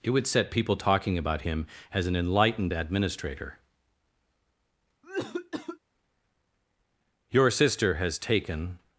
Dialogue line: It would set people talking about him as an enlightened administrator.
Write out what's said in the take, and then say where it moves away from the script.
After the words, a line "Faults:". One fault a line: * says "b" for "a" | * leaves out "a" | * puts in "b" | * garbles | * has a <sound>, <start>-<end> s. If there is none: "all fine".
It would set people talking about him as an enlightened administrator. Your sister has taken
Faults:
* has a cough, 5.0-5.8 s
* puts in "Your sister has taken"